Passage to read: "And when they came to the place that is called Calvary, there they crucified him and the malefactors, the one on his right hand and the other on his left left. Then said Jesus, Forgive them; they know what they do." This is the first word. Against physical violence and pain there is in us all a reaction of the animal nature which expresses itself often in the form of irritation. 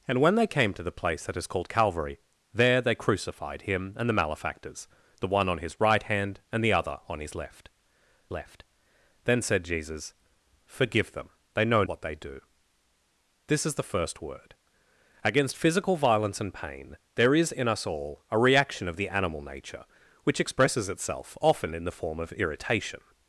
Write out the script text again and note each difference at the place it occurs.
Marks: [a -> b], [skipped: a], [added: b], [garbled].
"And when they came to the place that is called Calvary, there they crucified him and the malefactors, the one on his right hand and the other on his left left. Then said Jesus, Forgive them; they know what they do." This is the first word. Against physical violence and pain there is in us all a reaction of the animal nature which expresses itself often in the form of irritation.